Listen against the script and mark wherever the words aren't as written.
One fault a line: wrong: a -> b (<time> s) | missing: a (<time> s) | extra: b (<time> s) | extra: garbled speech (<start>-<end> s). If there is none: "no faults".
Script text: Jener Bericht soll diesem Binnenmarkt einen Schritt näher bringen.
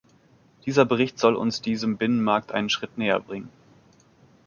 wrong: Jener -> Dieser (0.7 s)
extra: uns (1.4 s)